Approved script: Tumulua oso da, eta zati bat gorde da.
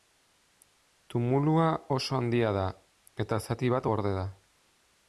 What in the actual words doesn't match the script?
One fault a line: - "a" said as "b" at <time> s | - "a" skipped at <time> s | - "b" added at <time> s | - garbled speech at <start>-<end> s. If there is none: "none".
- "handia" added at 2.2 s